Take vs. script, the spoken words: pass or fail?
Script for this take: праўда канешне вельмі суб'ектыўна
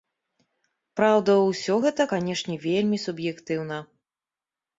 fail